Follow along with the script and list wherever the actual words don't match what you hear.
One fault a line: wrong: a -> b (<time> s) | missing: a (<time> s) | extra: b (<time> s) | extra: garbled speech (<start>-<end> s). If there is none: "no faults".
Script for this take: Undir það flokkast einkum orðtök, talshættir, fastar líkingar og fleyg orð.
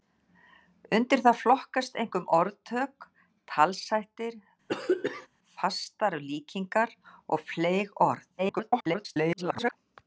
extra: garbled speech (8.4-9.7 s)